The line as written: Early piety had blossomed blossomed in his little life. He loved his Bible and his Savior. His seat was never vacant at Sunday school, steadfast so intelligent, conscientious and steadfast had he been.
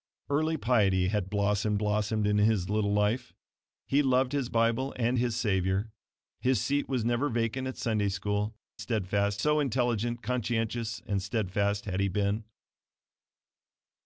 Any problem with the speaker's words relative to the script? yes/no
no